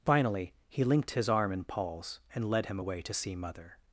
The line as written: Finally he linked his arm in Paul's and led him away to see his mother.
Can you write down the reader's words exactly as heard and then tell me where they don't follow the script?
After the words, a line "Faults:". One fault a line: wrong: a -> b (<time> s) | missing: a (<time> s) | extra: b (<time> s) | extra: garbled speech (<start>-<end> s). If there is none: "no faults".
Finally he linked his arm in Paul's and led him away to see mother.
Faults:
missing: his (3.3 s)